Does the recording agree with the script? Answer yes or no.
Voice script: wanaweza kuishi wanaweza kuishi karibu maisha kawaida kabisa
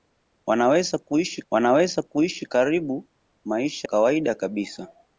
yes